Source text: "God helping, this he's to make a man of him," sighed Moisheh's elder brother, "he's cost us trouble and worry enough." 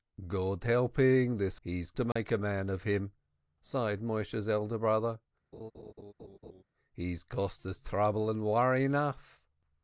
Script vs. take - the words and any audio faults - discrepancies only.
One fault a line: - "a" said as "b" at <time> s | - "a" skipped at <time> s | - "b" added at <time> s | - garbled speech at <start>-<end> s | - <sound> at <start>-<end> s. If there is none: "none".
- dropout at 2.1-2.2 s
- laugh at 5.5-6.6 s